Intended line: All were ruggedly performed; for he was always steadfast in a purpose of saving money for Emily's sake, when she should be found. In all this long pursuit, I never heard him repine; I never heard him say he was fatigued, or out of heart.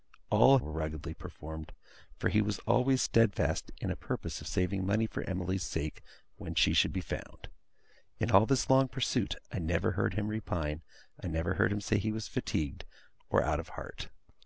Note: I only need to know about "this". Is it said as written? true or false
true